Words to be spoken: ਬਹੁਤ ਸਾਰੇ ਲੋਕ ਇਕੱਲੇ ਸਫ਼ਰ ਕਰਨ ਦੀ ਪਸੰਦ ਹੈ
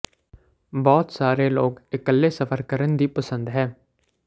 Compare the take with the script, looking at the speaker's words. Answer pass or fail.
pass